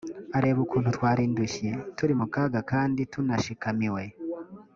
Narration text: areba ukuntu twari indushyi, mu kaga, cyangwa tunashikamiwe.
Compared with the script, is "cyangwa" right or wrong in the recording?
wrong